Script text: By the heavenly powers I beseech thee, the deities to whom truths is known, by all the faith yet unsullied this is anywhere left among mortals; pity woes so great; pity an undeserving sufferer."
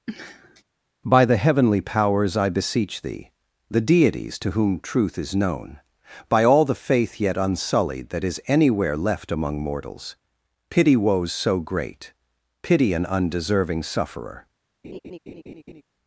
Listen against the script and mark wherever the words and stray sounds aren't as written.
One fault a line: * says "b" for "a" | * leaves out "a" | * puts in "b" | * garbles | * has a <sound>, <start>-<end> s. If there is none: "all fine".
* has a sniff, 0.1-0.6 s
* says "truth" for "truths"
* says "that" for "this"
* has a laugh, 14.8-15.8 s